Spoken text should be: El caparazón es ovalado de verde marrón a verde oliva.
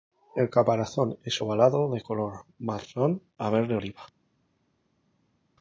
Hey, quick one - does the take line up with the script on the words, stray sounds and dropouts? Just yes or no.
no